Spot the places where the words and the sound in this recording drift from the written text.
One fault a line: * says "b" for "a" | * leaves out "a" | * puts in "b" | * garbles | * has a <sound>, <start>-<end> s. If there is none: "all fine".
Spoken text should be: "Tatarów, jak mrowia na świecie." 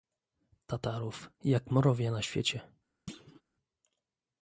* has a thud, 3.1-3.4 s